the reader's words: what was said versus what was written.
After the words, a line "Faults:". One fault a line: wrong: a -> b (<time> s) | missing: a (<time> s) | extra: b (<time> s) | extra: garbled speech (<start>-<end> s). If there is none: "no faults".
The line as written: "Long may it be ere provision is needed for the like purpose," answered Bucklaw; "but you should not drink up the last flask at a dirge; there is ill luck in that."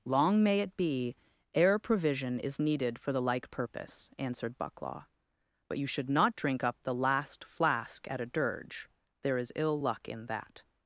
"Long may it be ere provision is needed for the like purpose," answered Bucklaw; "but you should not drink up the last flask at a dirge; there is ill luck in that."
Faults:
no faults